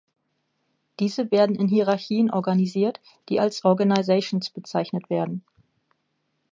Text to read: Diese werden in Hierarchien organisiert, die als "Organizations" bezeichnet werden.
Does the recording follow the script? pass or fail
pass